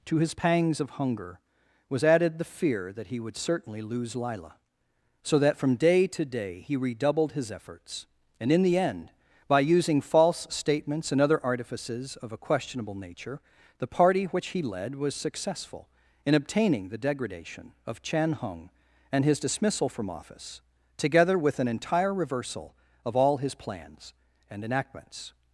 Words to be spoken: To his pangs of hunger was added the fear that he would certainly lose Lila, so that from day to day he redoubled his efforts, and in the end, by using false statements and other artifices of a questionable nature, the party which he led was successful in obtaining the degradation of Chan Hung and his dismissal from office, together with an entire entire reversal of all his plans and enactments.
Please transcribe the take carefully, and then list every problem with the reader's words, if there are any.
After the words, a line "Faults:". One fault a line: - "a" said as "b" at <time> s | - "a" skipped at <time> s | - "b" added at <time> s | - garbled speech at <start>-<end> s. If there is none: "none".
To his pangs of hunger was added the fear that he would certainly lose Lila, so that from day to day he redoubled his efforts, and in the end, by using false statements and other artifices of a questionable nature, the party which he led was successful in obtaining the degradation of Chan Hung and his dismissal from office, together with an entire reversal of all his plans and enactments.
Faults:
- "entire" skipped at 22.1 s